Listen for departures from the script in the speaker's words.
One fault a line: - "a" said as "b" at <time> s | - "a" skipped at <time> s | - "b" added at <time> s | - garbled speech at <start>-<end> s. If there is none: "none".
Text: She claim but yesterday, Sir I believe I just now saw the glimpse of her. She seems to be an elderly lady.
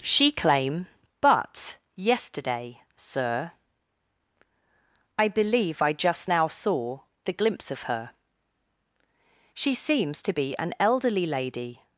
none